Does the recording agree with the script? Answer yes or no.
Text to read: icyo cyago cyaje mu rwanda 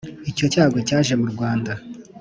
yes